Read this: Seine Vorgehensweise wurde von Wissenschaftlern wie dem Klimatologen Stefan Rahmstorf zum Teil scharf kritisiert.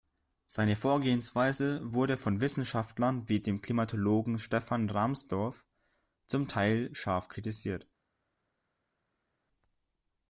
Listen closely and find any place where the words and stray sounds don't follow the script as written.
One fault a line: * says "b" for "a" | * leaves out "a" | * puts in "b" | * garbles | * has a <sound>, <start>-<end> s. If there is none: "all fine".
all fine